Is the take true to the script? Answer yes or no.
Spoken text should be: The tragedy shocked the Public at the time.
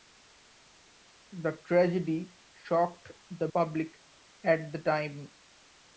yes